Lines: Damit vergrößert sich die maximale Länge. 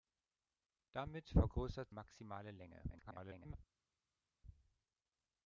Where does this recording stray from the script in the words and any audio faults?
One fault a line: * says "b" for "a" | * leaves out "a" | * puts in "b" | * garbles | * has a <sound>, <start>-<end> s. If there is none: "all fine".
* leaves out "sich die"
* garbles